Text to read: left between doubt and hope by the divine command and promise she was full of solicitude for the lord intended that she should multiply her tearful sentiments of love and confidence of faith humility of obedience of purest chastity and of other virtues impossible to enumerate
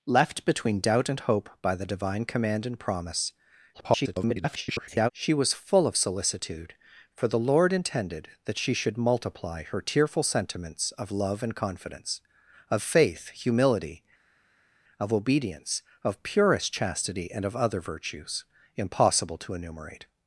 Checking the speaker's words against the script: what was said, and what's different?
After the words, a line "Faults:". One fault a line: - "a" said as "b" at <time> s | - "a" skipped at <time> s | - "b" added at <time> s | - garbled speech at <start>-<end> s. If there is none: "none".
left between doubt and hope by the divine command and promise [garbled] she was full of solicitude for the lord intended that she should multiply her tearful sentiments of love and confidence of faith humility of obedience of purest chastity and of other virtues impossible to enumerate
Faults:
- garbled speech at 3.7-5.1 s